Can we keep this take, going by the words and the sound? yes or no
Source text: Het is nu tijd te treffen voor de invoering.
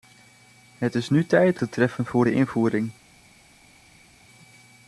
yes